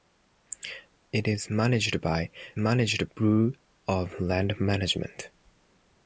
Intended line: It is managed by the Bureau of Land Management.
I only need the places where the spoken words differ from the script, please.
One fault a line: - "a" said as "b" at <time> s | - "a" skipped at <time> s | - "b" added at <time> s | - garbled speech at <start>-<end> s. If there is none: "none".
- "the" said as "managed" at 2.6 s